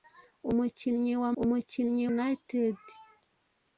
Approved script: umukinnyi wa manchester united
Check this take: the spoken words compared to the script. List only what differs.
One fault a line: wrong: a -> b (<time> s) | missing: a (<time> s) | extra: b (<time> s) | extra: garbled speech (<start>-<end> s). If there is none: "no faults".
wrong: manchester -> umukinnyi (1.4 s)